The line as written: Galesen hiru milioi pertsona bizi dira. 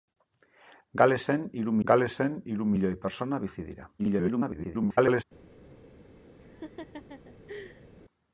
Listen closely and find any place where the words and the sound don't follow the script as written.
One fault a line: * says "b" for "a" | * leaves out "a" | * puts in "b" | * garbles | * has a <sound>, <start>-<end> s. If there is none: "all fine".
* puts in "galesen hiru"
* garbles
* has a laugh, 6.4-7.9 s